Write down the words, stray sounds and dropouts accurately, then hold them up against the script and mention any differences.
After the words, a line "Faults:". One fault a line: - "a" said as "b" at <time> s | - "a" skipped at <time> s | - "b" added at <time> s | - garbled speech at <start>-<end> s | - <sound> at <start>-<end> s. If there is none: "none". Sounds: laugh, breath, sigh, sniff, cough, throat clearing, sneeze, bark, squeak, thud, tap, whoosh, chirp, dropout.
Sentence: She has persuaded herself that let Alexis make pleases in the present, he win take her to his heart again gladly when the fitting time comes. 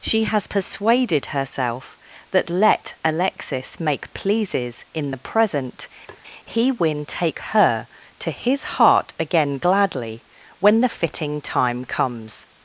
She has persuaded herself that let Alexis make pleases in the present, he win take her to his heart again gladly when the fitting time comes.
Faults:
- tap at 6.1-6.2 s